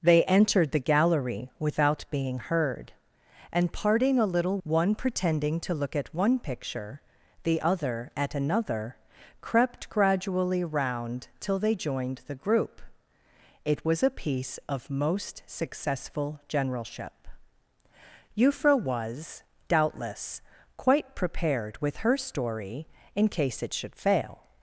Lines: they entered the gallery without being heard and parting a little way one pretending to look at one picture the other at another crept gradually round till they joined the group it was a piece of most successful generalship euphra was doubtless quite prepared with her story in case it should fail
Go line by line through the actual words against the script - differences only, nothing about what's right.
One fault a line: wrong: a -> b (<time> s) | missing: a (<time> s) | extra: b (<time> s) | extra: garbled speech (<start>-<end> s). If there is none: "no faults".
missing: way (4.6 s)